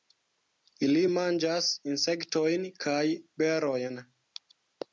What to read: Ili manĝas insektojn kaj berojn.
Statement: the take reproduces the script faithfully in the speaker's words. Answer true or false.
true